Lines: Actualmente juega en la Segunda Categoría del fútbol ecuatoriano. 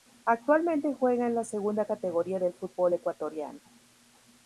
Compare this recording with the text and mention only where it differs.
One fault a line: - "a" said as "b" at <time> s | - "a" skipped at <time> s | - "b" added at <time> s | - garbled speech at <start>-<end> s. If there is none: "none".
none